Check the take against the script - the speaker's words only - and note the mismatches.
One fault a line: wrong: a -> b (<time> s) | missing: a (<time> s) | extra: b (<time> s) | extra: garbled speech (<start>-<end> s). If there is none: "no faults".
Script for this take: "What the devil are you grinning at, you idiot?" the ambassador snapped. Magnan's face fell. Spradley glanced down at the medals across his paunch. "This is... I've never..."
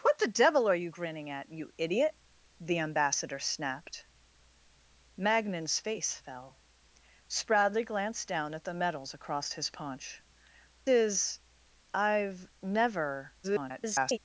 missing: This (10.2 s)
extra: garbled speech (13.4-14.2 s)